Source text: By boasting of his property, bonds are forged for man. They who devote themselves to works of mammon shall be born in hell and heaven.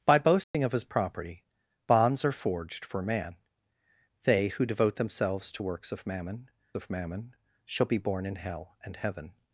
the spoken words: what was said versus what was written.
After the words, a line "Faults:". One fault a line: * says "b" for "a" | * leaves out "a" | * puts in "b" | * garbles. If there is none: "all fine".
By boasting of his property, bonds are forged for man. They who devote themselves to works of mammon of mammon shall be born in hell and heaven.
Faults:
* puts in "of mammon"